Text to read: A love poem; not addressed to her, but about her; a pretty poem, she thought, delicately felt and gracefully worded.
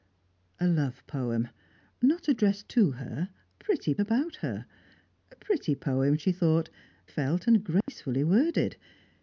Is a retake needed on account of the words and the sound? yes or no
yes